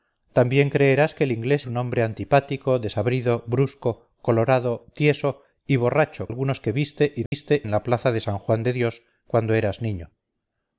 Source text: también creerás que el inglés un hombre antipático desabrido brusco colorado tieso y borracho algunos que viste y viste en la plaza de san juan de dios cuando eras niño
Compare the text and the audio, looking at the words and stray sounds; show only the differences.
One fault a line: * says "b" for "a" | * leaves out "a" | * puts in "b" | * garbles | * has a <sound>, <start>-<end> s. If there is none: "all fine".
* has a dropout, 7.3-7.3 s